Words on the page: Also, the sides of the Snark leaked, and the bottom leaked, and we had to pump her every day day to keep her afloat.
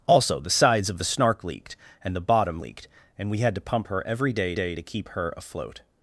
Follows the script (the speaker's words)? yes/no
yes